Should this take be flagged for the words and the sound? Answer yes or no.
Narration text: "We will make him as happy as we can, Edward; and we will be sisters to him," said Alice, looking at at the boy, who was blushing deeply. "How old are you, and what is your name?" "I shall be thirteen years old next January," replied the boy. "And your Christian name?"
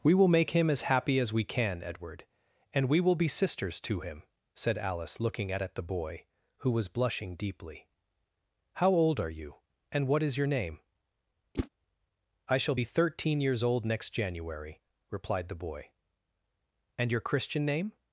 yes